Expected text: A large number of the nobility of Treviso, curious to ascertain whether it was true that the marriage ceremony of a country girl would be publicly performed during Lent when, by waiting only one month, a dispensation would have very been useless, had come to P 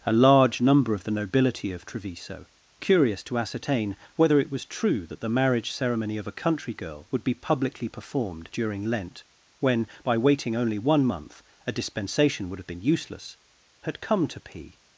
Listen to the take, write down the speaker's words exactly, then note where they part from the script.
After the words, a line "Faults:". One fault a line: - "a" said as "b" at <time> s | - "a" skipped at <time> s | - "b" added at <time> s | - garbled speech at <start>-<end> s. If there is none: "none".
A large number of the nobility of Treviso, curious to ascertain whether it was true that the marriage ceremony of a country girl would be publicly performed during Lent when, by waiting only one month, a dispensation would have been useless, had come to P
Faults:
- "very" skipped at 12.7 s